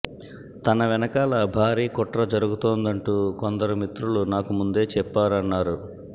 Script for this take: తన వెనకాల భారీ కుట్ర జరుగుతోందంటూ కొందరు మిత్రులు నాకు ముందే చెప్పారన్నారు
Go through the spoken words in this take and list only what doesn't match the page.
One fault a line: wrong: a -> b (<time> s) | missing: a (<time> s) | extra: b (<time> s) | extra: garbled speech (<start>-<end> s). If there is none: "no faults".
no faults